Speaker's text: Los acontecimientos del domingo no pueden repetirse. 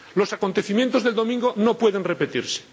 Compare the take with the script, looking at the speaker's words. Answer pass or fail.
pass